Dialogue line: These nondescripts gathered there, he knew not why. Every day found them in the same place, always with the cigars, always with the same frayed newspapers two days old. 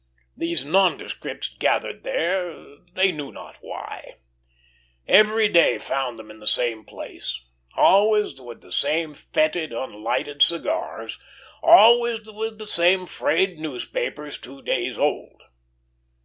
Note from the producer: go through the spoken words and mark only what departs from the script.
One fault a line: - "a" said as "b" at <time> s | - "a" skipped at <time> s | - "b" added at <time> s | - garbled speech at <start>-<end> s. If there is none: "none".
- "he" said as "they" at 3.0 s
- "same fetid unlighted" added at 8.7 s